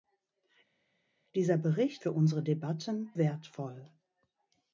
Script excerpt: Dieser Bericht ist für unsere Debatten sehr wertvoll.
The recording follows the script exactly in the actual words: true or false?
false